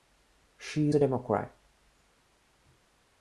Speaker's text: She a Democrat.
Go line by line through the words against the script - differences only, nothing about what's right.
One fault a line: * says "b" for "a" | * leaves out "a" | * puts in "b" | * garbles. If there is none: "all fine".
all fine